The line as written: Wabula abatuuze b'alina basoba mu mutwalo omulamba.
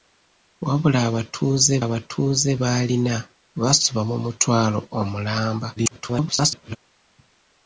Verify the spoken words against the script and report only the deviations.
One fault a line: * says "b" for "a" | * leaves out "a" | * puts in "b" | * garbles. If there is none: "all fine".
* puts in "abatuuze"
* garbles